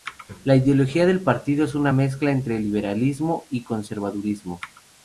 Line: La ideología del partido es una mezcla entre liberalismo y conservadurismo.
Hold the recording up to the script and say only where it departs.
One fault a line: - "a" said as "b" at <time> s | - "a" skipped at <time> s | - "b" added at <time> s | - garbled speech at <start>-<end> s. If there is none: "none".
none